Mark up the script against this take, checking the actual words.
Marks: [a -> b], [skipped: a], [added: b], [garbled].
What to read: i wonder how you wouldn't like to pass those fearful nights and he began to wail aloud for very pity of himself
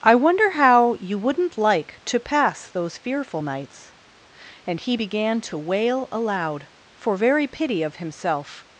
i wonder how you wouldn't like to pass those fearful nights and he began to wail aloud for very pity of himself